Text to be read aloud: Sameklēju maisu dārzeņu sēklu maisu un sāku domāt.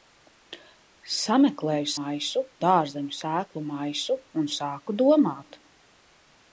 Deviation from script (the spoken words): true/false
false